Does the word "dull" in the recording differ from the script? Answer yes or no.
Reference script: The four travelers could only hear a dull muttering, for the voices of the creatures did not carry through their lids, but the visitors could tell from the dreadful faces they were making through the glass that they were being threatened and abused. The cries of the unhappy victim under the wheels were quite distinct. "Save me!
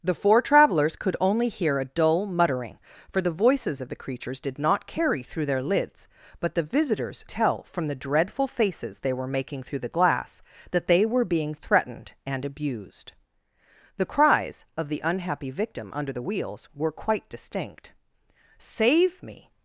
no